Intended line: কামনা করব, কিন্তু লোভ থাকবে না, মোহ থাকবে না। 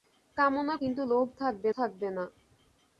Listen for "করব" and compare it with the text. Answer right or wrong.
wrong